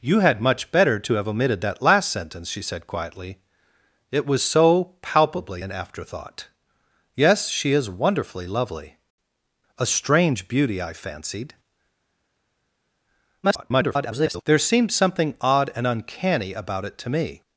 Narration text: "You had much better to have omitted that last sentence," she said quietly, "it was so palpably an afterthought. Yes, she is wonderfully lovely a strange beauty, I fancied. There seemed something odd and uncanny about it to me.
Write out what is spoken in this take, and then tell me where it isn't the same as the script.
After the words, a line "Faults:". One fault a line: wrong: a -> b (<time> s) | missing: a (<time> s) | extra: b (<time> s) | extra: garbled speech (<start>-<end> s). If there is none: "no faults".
"You had much better to have omitted that last sentence," she said quietly, "it was so palpably an afterthought. Yes, she is wonderfully lovely a strange beauty, I fancied. [garbled] There seemed something odd and uncanny about it to me.
Faults:
extra: garbled speech (13.4-14.4 s)